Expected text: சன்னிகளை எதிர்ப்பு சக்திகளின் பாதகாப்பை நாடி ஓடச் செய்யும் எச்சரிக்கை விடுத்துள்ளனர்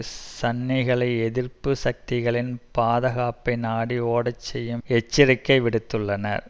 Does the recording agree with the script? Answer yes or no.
yes